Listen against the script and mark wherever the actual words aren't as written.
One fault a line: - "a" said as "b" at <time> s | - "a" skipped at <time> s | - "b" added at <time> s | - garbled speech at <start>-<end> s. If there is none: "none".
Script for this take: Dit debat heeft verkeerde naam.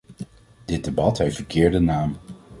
none